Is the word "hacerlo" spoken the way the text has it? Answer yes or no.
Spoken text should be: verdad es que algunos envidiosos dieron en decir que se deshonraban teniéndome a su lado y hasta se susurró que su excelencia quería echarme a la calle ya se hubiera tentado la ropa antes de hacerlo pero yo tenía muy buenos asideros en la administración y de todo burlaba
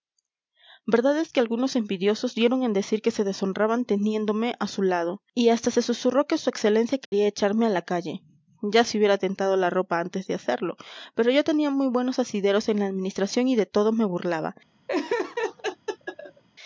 yes